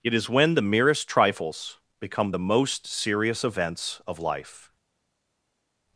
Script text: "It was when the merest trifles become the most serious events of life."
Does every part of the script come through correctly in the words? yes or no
no